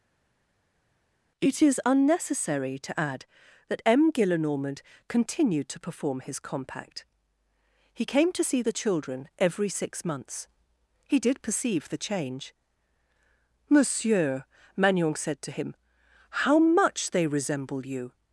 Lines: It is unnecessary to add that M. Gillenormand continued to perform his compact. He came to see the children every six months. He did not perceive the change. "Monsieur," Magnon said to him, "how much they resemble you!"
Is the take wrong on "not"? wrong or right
wrong